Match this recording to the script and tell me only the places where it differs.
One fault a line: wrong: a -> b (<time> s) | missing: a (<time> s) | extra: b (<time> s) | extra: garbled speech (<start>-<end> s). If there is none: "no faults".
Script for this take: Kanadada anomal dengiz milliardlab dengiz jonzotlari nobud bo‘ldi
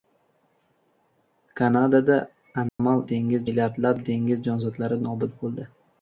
no faults